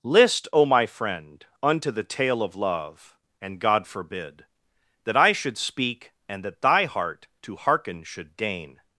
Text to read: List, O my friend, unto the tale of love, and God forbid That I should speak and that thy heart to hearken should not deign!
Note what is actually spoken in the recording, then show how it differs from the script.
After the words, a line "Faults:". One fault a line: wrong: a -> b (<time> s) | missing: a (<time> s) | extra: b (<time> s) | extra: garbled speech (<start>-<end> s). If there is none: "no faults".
List, O my friend, unto the tale of love, and God forbid That I should speak and that thy heart to hearken should deign!
Faults:
missing: not (8.4 s)